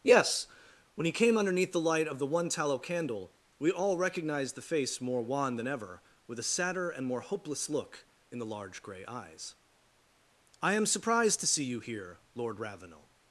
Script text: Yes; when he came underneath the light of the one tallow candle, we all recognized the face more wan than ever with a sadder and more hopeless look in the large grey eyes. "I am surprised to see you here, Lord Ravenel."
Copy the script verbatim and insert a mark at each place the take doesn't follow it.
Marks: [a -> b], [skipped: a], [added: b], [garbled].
Yes; when he came underneath the light of the one tallow candle, we all recognized the face more wan than ever with a sadder and more hopeless look in the large grey eyes. "I am surprised to see you here, Lord Ravenel."